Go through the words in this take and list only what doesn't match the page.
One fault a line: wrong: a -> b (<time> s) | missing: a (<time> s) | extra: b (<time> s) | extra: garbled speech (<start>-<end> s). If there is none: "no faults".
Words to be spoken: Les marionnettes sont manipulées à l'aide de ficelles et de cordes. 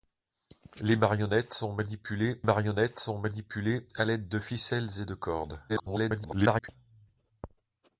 extra: marionnettes sont manipulées (2.4 s)
extra: garbled speech (5.7-6.7 s)